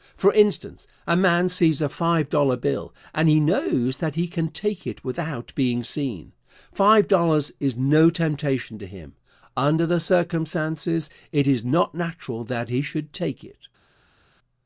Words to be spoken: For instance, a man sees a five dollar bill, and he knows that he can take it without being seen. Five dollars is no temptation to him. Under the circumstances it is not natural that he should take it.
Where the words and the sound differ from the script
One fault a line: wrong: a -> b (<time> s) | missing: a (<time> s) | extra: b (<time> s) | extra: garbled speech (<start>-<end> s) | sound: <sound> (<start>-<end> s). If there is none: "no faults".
no faults